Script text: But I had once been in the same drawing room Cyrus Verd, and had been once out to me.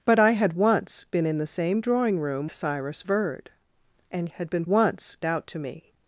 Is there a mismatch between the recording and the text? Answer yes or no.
no